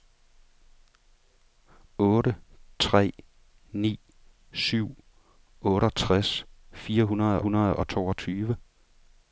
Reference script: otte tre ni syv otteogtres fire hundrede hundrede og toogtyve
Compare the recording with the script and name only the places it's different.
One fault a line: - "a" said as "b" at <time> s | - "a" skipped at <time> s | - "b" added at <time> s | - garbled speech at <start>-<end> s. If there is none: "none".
none